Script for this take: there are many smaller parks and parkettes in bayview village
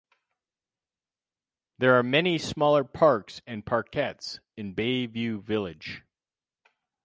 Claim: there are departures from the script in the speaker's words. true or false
false